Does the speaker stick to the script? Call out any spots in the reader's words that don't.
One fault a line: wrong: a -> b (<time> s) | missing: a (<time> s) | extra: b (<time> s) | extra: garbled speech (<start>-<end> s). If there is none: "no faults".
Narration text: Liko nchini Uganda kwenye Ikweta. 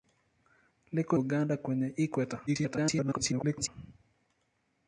missing: nchini (1.2 s)
extra: garbled speech (2.5-3.7 s)